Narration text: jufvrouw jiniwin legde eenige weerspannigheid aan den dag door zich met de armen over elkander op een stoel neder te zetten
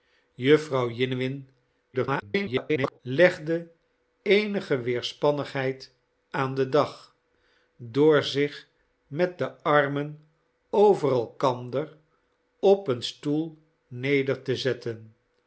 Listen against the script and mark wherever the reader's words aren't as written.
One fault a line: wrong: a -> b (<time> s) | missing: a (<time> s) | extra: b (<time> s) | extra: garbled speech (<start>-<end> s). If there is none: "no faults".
extra: garbled speech (1.9-3.0 s)